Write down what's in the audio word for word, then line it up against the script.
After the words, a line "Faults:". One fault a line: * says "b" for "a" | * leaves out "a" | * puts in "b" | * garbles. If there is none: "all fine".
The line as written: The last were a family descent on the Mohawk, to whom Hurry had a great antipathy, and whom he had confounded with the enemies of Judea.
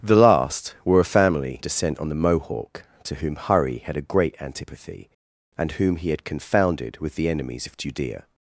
The last were a family descent on the Mohawk, to whom Hurry had a great antipathy, and whom he had confounded with the enemies of Judea.
Faults:
all fine